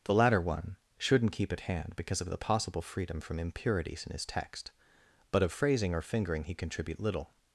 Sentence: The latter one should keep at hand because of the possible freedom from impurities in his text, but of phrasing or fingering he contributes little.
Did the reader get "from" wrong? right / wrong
right